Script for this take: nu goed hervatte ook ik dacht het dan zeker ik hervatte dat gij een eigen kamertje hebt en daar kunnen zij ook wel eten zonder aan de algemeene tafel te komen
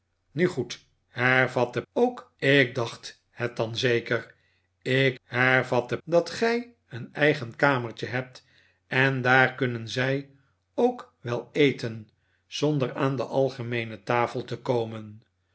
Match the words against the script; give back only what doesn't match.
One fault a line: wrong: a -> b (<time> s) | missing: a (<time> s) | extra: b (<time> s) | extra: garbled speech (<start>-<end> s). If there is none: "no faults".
no faults